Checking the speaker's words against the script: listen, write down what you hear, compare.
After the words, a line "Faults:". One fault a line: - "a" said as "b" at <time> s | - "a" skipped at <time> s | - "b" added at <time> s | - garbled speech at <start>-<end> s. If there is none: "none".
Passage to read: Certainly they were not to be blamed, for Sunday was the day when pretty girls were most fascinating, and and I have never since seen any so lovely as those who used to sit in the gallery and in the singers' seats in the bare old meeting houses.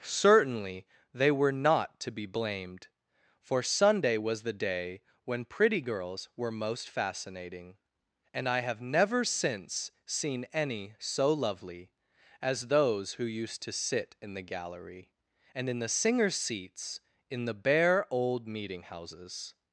Certainly they were not to be blamed, for Sunday was the day when pretty girls were most fascinating, and I have never since seen any so lovely as those who used to sit in the gallery and in the singers' seats in the bare old meeting houses.
Faults:
- "and" skipped at 8.5 s